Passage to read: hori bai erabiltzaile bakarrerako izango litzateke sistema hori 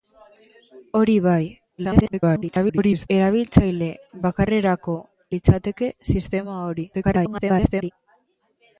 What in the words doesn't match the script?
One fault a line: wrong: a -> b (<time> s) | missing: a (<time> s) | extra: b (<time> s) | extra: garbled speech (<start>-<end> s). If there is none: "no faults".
extra: garbled speech (1.8-3.1 s)
missing: izango (5.0 s)
extra: garbled speech (6.9-7.9 s)